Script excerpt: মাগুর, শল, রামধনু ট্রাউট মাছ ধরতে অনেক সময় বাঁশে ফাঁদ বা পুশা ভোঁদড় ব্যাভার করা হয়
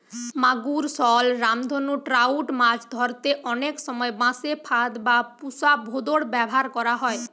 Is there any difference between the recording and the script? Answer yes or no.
no